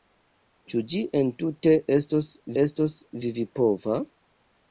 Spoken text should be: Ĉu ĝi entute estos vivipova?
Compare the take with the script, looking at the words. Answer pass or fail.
fail